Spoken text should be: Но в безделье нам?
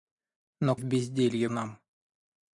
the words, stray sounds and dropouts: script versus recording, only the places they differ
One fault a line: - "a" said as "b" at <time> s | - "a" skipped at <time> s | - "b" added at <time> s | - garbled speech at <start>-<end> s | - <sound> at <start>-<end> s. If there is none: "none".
none